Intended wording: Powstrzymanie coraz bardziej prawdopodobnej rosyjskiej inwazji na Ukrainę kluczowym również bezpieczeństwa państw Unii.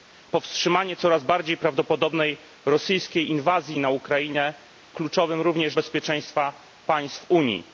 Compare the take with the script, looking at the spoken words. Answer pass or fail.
pass